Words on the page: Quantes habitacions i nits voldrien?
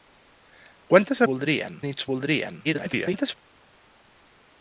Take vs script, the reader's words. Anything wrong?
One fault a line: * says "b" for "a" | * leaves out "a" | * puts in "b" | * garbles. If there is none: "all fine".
* says "voldrien" for "habitacions"
* garbles